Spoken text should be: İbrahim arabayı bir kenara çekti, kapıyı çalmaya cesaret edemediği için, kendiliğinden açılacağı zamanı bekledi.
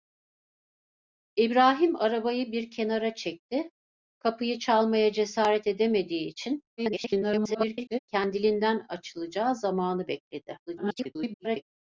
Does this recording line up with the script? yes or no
no